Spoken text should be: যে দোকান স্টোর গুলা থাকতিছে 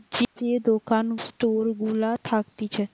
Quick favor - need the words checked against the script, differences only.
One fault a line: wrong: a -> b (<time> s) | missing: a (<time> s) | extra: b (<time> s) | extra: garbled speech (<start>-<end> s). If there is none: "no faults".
no faults